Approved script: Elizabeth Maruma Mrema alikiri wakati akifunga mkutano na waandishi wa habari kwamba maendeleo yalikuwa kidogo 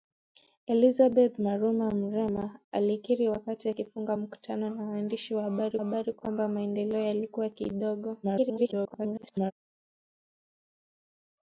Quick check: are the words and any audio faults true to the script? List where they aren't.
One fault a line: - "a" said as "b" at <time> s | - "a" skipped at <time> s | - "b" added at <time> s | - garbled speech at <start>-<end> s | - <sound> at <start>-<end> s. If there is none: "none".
- "habari" added at 5.8 s
- garbled speech at 8.2-9.5 s